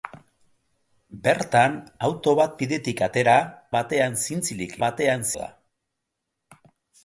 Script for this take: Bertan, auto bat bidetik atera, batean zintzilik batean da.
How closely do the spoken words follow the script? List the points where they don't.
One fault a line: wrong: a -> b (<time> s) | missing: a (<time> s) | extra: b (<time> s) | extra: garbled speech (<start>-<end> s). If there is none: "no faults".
no faults